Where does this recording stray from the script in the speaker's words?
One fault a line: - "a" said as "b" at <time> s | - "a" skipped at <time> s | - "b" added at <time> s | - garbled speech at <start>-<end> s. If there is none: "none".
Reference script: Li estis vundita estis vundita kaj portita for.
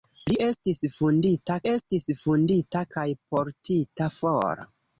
none